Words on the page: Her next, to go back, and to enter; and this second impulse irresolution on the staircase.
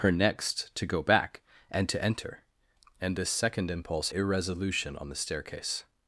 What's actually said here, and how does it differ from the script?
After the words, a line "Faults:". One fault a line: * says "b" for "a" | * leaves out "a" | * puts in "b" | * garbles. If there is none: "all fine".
Her next, to go back, and to enter; and this second impulse irresolution on the staircase.
Faults:
all fine